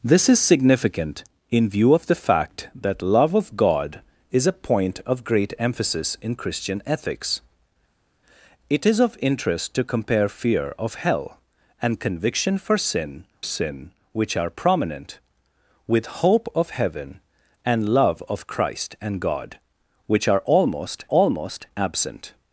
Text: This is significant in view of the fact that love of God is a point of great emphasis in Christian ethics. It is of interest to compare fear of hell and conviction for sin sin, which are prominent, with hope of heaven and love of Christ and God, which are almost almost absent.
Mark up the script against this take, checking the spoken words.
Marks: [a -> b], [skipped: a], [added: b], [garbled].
This is significant in view of the fact that love of God is a point of great emphasis in Christian ethics. It is of interest to compare fear of hell and conviction for sin sin, which are prominent, with hope of heaven and love of Christ and God, which are almost almost absent.